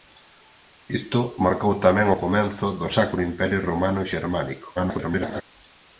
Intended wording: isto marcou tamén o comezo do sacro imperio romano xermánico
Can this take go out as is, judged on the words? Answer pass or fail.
fail